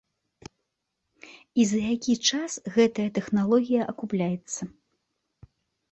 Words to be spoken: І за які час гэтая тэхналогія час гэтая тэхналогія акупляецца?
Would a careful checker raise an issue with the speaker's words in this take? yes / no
yes